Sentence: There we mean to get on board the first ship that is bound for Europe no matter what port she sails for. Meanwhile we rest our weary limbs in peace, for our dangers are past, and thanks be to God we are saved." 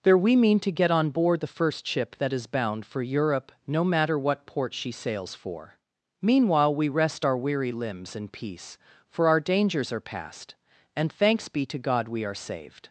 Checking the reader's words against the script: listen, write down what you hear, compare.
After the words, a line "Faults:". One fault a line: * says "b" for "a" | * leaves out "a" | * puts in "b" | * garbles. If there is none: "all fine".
There we mean to get on board the first ship that is bound for Europe no matter what port she sails for. Meanwhile we rest our weary limbs in peace, for our dangers are past, and thanks be to God we are saved."
Faults:
all fine